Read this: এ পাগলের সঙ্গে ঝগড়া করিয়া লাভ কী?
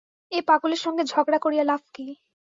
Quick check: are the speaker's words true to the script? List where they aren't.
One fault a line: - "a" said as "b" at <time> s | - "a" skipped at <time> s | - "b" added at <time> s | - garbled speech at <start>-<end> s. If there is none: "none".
none